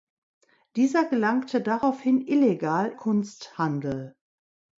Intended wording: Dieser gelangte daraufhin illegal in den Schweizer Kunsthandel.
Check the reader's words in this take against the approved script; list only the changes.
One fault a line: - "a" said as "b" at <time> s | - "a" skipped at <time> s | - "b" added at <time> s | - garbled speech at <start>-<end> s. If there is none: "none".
- "in den Schweizer" skipped at 2.9 s